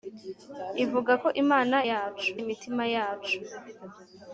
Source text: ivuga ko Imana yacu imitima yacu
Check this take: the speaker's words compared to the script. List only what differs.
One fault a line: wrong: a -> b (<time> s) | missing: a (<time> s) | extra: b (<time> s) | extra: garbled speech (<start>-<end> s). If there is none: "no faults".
no faults